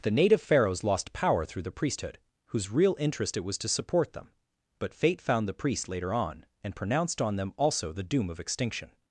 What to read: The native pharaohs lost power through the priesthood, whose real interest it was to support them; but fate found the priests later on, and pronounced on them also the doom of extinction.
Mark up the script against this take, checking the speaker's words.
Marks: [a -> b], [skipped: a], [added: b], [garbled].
The native pharaohs lost power through the priesthood, whose real interest it was to support them; but fate found the priests later on, and pronounced on them also the doom of extinction.